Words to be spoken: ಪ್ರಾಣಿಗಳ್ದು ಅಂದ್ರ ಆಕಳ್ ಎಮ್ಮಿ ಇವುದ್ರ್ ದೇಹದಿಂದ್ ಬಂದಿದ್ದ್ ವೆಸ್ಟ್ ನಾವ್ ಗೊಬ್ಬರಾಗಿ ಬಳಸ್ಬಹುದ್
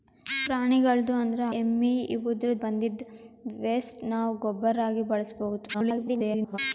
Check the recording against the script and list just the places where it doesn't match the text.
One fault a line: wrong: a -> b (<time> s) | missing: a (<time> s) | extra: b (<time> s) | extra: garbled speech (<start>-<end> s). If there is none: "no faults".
missing: ಆಕಳ್ (1.4 s)
missing: ದೇಹದಿಂದ್ (2.5 s)
extra: garbled speech (5.7-6.6 s)